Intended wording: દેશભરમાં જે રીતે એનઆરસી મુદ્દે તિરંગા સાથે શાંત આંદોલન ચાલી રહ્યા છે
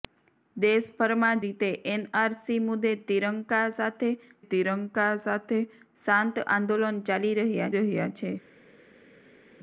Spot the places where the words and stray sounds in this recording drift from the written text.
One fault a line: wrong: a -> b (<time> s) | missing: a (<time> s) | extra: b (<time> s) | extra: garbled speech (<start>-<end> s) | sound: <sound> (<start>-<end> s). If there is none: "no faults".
missing: જે (1.4 s)
extra: તિરંગા સાથે (4.5 s)
extra: રહ્યા (7.8 s)